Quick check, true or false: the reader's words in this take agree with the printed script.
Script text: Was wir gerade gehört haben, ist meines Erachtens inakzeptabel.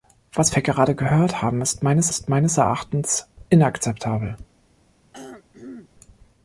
false